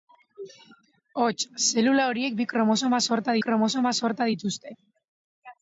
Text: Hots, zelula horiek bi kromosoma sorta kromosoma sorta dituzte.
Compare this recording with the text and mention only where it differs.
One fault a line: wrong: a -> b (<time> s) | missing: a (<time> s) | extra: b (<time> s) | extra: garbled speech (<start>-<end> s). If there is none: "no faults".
no faults